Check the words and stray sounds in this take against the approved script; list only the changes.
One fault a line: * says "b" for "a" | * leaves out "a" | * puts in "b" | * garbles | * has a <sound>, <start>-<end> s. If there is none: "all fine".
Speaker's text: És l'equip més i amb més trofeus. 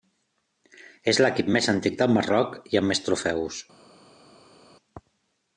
* puts in "antic del Marroc"